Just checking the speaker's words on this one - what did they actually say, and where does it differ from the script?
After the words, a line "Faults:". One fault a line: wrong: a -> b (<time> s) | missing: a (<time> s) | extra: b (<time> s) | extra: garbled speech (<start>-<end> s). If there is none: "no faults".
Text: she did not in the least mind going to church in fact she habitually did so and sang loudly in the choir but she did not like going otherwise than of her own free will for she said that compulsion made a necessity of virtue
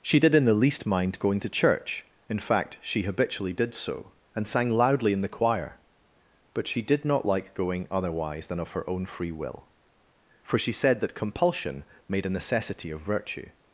she did in the least mind going to church in fact she habitually did so and sang loudly in the choir but she did not like going otherwise than of her own free will for she said that compulsion made a necessity of virtue
Faults:
missing: not (0.3 s)